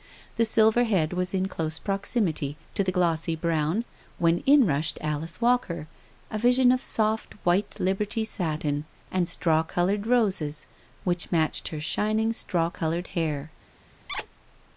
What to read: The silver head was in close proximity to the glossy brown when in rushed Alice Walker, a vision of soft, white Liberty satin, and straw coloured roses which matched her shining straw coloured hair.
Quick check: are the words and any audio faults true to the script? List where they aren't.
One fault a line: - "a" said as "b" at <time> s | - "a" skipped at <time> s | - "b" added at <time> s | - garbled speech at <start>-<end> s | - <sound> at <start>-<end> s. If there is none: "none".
- squeak at 14.1-14.3 s